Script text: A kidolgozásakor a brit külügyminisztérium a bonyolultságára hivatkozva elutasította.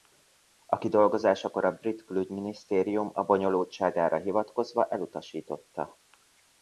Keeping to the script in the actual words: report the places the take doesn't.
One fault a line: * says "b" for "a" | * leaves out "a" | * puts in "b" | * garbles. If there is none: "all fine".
all fine